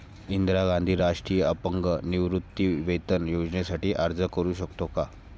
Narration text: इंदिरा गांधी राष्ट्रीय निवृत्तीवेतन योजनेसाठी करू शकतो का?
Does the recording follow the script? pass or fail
fail